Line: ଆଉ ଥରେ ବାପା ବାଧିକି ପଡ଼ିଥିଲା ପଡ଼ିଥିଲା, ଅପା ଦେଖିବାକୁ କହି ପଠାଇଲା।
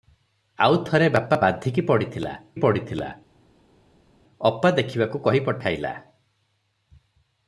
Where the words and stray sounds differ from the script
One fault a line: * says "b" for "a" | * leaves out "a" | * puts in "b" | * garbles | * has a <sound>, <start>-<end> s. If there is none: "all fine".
all fine